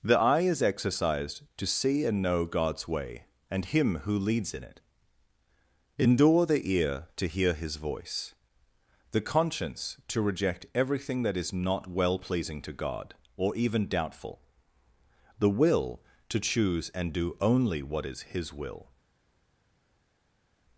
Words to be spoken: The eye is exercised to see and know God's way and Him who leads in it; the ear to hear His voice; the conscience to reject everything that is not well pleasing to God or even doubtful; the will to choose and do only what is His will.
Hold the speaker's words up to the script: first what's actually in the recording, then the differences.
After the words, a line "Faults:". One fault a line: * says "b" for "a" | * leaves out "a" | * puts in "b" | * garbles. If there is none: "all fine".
The eye is exercised to see and know God's way and Him who leads in it; endure the ear to hear His voice; the conscience to reject everything that is not well pleasing to God or even doubtful; the will to choose and do only what is His will.
Faults:
* puts in "endure"